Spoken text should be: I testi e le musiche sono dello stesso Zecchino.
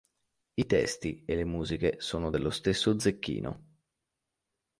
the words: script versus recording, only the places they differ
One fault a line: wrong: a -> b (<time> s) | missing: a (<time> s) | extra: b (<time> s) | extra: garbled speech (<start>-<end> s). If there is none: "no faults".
no faults